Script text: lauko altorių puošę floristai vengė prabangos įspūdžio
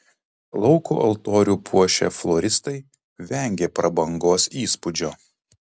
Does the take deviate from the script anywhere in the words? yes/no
no